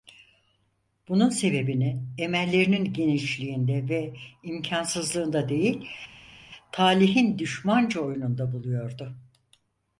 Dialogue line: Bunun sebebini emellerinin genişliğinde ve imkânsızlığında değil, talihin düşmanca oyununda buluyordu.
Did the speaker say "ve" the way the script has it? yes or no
yes